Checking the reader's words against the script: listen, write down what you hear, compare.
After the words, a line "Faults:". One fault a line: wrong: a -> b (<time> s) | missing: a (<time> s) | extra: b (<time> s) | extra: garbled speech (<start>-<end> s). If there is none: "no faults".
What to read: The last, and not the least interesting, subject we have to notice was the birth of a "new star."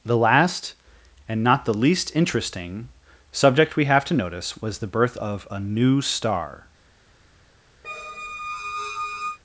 The last, and not the least interesting, subject we have to notice was the birth of a "new star."
Faults:
no faults